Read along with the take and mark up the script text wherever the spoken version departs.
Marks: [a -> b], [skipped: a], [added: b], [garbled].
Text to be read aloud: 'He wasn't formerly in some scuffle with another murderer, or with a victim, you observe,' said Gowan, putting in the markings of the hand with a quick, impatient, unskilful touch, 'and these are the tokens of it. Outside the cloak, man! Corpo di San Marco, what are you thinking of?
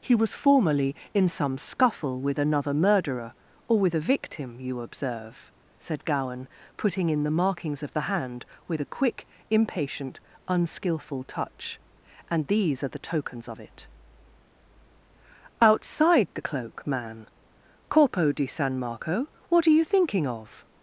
'He [wasn't -> was] formerly in some scuffle with another murderer, or with a victim, you observe,' said Gowan, putting in the markings of the hand with a quick, impatient, unskilful touch, 'and these are the tokens of it. Outside the cloak, man! Corpo di San Marco, what are you thinking of?